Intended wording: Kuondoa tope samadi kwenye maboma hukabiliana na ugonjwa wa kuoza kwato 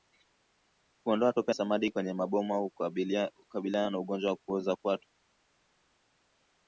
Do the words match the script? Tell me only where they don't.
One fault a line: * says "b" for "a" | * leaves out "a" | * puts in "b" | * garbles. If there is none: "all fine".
all fine